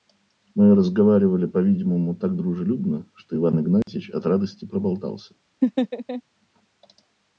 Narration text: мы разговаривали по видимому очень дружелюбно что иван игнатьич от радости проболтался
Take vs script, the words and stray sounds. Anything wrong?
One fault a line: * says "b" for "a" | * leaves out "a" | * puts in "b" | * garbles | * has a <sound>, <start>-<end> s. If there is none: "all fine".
* says "так" for "очень"
* has a dropout, 3.8-3.9 s
* has a laugh, 5.6-6.2 s